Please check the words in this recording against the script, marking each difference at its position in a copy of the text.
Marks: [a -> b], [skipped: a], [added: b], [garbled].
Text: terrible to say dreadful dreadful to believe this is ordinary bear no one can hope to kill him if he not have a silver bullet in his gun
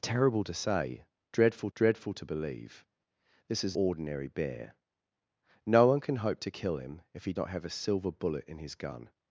terrible to say dreadful dreadful to believe this is ordinary bear no one can hope to kill him if he not have a silver bullet in his gun